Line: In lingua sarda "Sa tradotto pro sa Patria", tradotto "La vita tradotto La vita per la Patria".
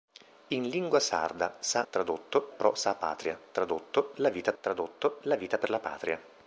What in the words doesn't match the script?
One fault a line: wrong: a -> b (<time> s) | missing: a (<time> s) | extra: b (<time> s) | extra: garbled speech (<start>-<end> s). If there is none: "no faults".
no faults